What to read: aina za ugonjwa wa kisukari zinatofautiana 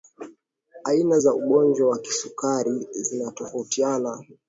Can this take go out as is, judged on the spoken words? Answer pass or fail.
pass